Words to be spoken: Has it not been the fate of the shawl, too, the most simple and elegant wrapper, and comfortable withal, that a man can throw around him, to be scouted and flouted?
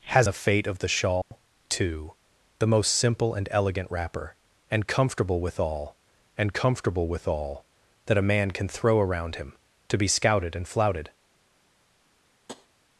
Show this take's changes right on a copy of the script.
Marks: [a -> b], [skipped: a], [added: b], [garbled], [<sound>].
Has [skipped: it not been] the fate of the shawl, [dropout] too, the most simple and elegant wrapper, and comfortable withal, [added: and comfortable withal] that a man can throw around him, to be scouted and flouted? [tap]